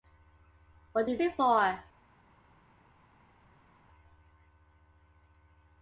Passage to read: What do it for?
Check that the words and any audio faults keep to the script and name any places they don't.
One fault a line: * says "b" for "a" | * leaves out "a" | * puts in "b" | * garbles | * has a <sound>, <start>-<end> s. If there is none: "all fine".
all fine